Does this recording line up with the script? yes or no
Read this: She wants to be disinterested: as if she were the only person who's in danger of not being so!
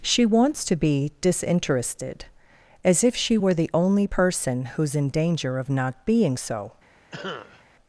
yes